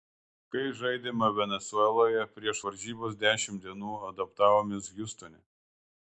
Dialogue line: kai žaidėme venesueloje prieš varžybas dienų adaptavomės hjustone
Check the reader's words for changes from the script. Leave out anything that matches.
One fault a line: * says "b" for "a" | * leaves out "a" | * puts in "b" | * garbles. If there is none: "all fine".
* puts in "dešimt"